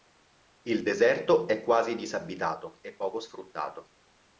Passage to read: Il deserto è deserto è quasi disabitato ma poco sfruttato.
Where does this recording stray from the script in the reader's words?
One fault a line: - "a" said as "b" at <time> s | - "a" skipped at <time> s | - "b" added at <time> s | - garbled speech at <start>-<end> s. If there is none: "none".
- "deserto è" skipped at 1.6 s
- "ma" said as "e" at 2.8 s